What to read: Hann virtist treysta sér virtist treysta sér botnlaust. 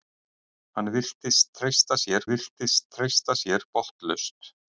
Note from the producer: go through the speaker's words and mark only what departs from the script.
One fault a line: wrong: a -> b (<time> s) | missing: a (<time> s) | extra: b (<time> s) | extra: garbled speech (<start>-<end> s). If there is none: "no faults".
no faults